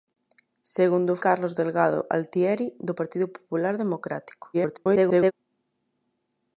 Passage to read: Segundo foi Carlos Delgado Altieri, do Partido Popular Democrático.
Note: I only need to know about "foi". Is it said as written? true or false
false